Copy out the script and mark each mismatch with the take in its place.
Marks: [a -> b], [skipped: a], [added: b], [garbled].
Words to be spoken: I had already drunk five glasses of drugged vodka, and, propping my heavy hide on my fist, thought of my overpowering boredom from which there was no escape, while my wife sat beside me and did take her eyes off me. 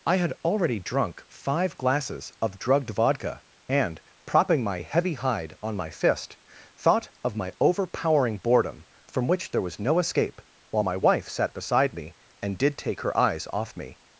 I had already drunk five glasses of drugged vodka, and, propping my heavy hide on my fist, thought of my overpowering boredom from which there was no escape, while my wife sat beside me and did take her eyes off me.